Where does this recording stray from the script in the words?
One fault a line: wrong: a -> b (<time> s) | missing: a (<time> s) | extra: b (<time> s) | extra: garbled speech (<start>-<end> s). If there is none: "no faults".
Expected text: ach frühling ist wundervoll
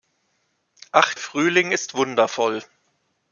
no faults